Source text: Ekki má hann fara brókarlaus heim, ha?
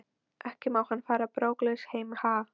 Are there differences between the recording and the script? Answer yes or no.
no